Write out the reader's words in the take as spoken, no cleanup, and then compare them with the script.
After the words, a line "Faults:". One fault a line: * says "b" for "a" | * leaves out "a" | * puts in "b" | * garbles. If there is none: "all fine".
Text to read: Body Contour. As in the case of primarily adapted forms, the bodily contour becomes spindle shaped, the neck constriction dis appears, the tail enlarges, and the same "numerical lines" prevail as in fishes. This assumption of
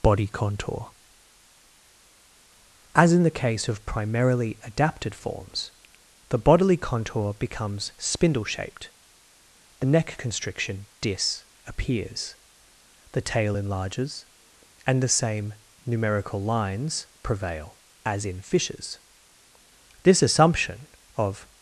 Body Contour. As in the case of primarily adapted forms, the bodily contour becomes spindle shaped, the neck constriction dis appears, the tail enlarges, and the same "numerical lines" prevail as in fishes. This assumption of
Faults:
all fine